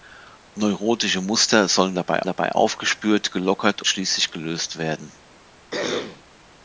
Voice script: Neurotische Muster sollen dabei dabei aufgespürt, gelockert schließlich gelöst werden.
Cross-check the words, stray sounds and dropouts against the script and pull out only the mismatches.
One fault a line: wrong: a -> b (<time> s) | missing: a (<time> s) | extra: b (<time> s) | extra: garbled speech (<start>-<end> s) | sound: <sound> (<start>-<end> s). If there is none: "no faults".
sound: throat clearing (5.7-6.2 s)